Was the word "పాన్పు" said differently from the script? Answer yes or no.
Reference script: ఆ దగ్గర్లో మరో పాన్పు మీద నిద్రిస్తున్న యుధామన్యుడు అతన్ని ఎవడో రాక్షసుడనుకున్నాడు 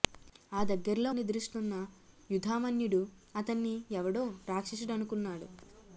yes